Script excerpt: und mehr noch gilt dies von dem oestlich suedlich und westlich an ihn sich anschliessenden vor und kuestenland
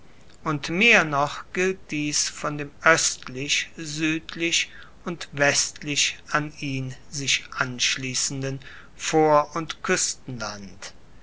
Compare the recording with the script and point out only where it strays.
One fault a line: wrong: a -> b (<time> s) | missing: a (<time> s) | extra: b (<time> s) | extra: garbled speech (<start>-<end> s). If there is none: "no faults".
no faults